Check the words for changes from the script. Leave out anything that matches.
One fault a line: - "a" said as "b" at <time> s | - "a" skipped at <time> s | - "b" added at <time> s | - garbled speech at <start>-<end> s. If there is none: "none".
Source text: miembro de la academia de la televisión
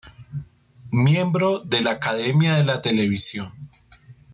none